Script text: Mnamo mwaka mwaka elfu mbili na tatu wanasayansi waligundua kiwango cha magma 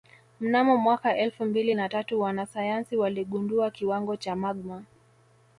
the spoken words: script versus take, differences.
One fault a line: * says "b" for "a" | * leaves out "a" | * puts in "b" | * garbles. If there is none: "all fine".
* leaves out "mwaka"